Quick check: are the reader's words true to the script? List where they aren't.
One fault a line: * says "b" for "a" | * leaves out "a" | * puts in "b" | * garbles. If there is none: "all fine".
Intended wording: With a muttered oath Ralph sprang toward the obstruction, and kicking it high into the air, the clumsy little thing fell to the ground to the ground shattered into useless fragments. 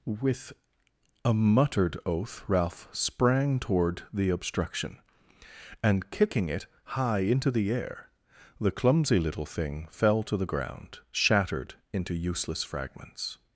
* leaves out "to the ground"